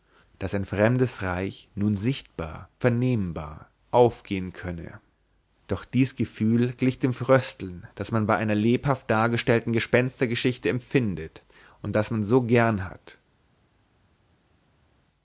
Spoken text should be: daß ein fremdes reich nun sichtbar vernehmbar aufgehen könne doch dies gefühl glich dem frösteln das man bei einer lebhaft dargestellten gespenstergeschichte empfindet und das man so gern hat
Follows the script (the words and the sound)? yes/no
yes